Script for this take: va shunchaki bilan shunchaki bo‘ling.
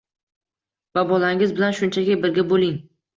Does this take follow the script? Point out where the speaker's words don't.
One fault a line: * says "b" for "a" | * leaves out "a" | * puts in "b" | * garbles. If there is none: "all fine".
* says "bolangiz" for "shunchaki"
* puts in "birga"